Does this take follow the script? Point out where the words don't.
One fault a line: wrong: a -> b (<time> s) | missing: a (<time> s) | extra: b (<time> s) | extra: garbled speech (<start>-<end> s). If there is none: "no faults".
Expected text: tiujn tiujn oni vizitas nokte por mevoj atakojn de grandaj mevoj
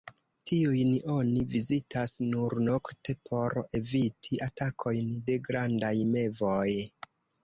missing: tiujn (0.9 s)
extra: nur (2.3 s)
wrong: mevoj -> eviti (3.8 s)